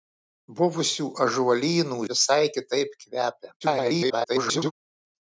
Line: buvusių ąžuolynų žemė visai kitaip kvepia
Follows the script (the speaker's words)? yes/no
no